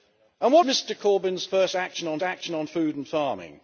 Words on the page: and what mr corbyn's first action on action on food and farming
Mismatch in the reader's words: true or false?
false